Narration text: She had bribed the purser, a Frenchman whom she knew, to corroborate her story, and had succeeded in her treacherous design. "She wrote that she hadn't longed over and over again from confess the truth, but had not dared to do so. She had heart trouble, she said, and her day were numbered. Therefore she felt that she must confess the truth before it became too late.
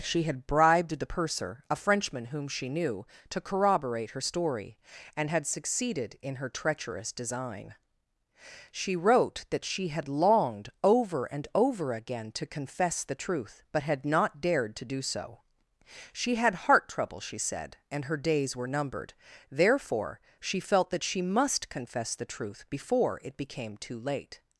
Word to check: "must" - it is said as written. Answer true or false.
true